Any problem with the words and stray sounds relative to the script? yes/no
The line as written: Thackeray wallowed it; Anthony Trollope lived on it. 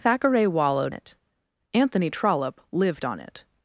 no